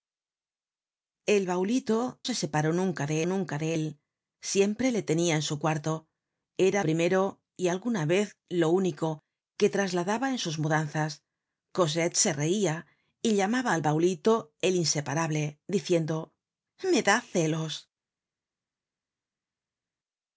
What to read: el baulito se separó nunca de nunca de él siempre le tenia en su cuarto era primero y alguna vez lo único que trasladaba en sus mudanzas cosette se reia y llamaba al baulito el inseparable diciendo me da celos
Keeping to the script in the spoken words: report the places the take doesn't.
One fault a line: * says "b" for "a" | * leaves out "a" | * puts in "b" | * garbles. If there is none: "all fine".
all fine